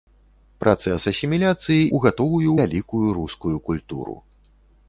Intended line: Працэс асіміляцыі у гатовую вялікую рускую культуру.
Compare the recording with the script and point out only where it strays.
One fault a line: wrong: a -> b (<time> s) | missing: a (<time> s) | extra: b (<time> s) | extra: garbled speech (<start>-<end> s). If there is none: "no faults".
no faults